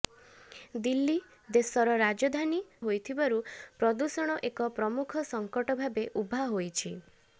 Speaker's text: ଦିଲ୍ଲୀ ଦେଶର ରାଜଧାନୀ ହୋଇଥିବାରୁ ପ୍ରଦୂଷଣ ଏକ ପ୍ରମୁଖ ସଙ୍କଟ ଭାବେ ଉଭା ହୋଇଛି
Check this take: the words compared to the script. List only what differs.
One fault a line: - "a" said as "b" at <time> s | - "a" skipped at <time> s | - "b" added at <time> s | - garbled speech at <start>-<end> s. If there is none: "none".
none